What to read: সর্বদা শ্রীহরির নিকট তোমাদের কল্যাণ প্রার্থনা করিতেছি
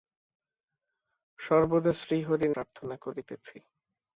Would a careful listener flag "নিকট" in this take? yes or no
yes